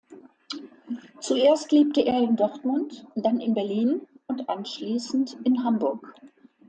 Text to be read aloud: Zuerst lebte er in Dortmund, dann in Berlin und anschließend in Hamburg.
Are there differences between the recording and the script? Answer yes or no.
no